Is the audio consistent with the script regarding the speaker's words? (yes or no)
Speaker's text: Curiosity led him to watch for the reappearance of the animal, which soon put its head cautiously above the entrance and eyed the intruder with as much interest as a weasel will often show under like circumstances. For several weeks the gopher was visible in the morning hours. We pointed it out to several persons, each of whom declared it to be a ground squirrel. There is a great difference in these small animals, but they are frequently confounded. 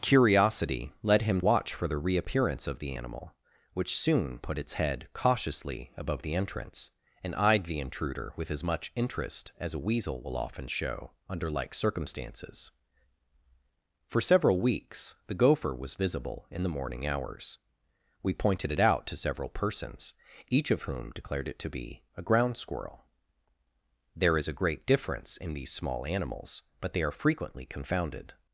no